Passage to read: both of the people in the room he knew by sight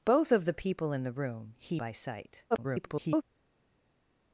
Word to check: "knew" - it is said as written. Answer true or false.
false